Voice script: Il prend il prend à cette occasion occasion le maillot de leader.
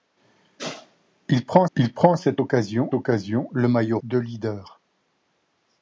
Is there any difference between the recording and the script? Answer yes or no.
no